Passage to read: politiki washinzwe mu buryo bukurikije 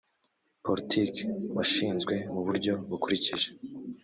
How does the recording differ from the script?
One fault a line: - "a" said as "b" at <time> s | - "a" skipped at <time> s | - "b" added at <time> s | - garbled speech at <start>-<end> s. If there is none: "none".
none